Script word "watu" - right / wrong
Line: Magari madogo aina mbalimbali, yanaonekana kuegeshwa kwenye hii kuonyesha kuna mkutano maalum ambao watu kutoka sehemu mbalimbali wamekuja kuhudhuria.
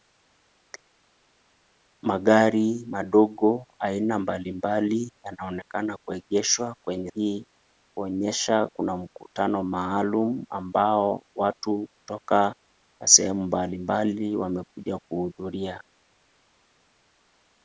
right